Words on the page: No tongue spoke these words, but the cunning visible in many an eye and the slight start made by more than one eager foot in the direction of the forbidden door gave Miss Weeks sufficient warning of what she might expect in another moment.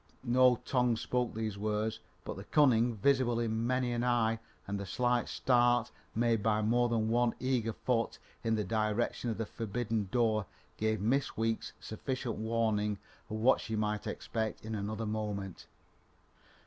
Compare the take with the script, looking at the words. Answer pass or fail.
pass